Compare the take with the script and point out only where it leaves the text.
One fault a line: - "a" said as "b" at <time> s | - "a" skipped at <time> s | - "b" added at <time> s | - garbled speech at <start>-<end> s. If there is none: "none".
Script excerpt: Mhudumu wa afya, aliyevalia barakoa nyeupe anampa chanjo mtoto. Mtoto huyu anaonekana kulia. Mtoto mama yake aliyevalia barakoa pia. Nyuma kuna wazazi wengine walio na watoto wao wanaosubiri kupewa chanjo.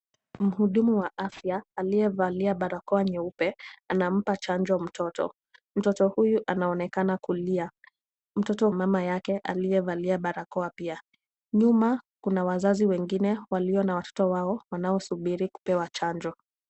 none